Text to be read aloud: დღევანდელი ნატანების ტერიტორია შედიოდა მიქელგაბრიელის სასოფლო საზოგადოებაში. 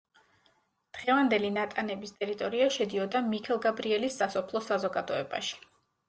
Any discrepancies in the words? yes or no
no